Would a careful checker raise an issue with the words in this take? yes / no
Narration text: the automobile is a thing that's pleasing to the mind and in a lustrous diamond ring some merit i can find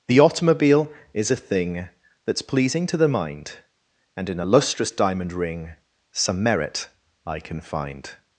no